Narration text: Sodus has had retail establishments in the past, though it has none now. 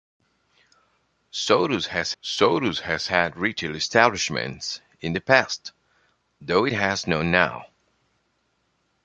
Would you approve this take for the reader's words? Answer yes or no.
no